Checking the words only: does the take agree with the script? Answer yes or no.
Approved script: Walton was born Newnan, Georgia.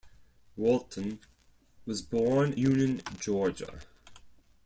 yes